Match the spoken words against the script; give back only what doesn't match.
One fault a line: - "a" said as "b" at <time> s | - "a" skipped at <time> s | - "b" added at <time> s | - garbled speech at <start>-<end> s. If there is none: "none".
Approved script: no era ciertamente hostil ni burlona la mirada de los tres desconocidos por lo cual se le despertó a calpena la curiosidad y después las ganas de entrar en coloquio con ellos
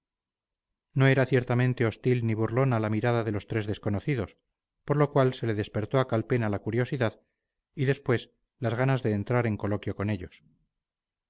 none